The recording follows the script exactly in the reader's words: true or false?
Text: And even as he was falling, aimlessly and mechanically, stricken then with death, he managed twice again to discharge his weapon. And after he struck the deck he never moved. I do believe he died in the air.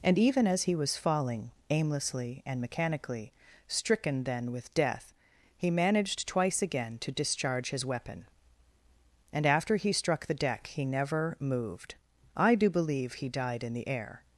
true